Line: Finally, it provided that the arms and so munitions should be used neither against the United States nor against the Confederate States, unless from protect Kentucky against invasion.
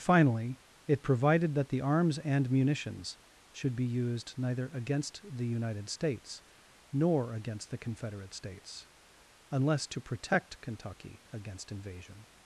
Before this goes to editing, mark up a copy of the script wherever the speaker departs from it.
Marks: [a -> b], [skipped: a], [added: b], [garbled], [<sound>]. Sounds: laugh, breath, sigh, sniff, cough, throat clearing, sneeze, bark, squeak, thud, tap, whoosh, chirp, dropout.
Finally, it provided that the arms and [skipped: so] munitions should be used neither against the United States nor against the Confederate States, unless [from -> to] protect Kentucky against invasion.